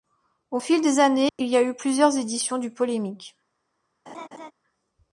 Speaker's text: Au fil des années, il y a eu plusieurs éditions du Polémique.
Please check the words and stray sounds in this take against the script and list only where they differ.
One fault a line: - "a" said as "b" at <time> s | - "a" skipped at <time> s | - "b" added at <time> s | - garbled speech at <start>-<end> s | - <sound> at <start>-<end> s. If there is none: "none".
- dropout at 1.3-1.4 s
- laugh at 4.1-4.5 s